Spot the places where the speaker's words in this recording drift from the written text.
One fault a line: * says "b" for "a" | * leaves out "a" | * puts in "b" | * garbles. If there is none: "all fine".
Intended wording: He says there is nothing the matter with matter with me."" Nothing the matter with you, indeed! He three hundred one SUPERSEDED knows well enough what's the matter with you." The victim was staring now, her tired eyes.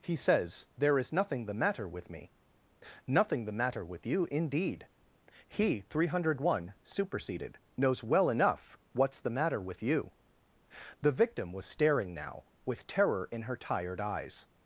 * leaves out "matter with"
* puts in "with terror in"